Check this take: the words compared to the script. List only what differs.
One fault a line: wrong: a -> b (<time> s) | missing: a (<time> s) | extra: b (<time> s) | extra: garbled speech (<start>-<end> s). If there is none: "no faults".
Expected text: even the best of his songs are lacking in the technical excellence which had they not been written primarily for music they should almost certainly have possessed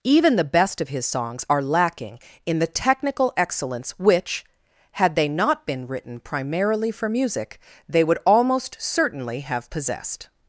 wrong: should -> would (8.0 s)